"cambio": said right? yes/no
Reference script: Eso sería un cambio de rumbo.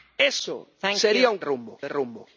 no